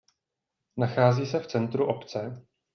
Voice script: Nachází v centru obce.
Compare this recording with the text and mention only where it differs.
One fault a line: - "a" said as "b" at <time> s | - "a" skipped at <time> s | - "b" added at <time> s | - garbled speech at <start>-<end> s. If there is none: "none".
- "se" added at 1.2 s